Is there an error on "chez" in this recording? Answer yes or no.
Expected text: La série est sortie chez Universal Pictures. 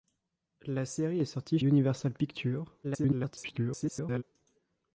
yes